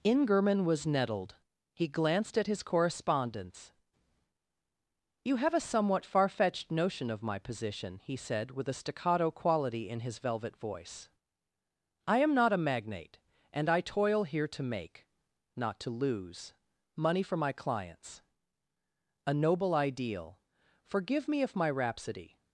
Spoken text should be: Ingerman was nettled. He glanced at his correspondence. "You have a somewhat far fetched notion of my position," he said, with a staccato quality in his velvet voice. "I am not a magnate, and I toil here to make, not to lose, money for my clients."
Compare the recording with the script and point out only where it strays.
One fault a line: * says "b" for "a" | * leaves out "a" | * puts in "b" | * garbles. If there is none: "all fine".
* puts in "A noble ideal Forgive me if my rhapsody"